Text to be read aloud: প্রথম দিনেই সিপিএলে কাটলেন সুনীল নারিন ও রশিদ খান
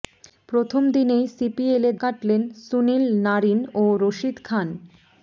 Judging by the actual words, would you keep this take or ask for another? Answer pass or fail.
pass